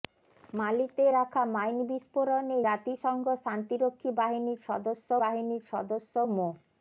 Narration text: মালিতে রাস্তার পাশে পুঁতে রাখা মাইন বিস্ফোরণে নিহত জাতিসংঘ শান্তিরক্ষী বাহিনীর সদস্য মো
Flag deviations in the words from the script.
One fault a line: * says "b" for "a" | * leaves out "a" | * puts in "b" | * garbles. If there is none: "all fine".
* leaves out "রাস্তার পাশে পুঁতে"
* leaves out "নিহত"
* puts in "বাহিনীর সদস্য"